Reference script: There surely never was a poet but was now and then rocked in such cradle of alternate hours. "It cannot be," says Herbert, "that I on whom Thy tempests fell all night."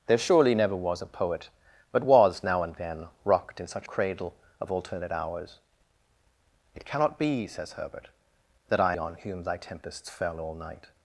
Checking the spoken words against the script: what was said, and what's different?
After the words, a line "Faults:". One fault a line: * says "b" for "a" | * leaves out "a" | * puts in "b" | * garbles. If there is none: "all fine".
There surely never was a poet but was now and then rocked in such cradle of alternate hours. "It cannot be," says Herbert, "that I on whom Thy tempests fell all night."
Faults:
all fine